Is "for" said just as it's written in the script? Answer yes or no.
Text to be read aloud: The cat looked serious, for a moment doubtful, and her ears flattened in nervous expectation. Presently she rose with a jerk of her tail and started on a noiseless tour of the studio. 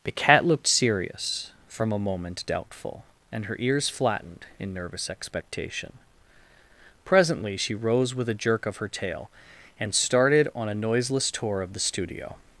no